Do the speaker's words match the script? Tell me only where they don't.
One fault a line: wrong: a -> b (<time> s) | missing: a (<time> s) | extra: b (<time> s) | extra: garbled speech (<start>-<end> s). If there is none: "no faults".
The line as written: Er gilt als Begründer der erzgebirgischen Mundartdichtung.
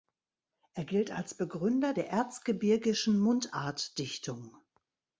no faults